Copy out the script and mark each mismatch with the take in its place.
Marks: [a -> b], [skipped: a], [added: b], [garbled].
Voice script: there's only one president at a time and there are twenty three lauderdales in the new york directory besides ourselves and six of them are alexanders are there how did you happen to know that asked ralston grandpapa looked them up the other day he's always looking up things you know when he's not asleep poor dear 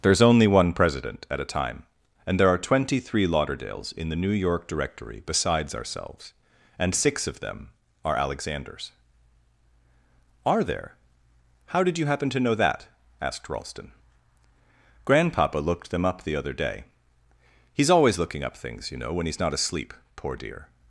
there's only one president at a time and there are twenty three lauderdales in the new york directory besides ourselves and six of them are alexanders are there how did you happen to know that asked ralston grandpapa looked them up the other day he's always looking up things you know when he's not asleep poor dear